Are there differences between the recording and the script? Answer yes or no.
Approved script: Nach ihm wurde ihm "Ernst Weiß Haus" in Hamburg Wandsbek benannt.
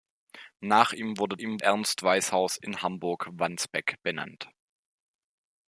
no